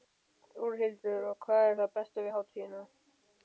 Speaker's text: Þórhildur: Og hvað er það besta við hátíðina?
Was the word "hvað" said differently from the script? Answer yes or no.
no